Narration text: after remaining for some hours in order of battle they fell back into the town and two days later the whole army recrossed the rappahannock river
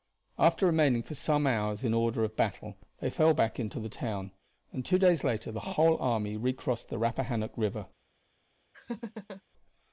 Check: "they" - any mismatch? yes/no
no